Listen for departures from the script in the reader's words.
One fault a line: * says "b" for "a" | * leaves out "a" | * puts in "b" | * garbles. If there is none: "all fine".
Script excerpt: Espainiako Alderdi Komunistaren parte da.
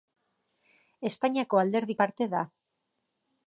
* leaves out "Komunistaren"